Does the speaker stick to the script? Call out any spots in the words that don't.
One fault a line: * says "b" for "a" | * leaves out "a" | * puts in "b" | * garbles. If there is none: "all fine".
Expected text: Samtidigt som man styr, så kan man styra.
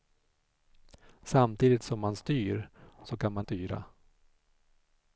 all fine